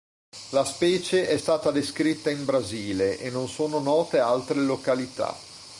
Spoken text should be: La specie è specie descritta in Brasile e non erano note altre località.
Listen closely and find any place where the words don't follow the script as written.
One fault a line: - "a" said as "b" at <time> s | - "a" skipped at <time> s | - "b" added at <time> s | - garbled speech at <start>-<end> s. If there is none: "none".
- "specie" said as "stata" at 1.3 s
- "erano" said as "sono" at 3.5 s